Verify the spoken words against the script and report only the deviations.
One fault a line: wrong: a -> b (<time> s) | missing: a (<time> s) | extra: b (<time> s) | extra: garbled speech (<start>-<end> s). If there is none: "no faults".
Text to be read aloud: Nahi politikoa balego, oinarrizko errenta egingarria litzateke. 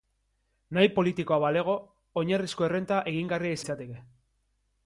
no faults